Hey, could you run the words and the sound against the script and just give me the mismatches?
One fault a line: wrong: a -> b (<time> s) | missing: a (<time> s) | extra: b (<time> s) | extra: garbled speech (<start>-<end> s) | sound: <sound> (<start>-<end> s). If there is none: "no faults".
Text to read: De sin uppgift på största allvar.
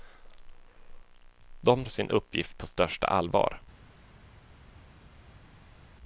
no faults